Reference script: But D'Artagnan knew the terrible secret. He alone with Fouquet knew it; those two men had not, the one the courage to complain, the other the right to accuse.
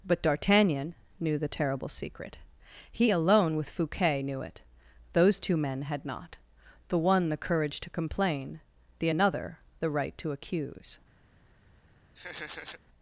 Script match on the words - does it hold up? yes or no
no